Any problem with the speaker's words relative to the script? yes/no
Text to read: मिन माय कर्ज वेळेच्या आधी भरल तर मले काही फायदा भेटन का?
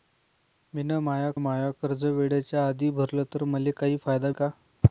yes